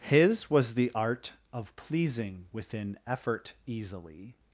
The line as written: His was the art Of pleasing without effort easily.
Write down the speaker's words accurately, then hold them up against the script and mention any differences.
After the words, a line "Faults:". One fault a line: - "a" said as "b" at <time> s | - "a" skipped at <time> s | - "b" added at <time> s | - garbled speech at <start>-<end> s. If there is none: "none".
His was the art Of pleasing within effort easily.
Faults:
- "without" said as "within" at 2.5 s